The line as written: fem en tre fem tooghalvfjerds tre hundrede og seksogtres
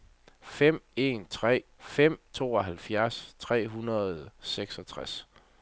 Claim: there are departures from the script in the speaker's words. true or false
false